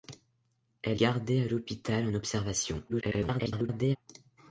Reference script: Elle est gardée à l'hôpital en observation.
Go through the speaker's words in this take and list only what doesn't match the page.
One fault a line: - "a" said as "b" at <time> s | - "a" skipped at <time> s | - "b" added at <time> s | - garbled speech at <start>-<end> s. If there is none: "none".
- "est" skipped at 1.0 s
- garbled speech at 2.9-4.0 s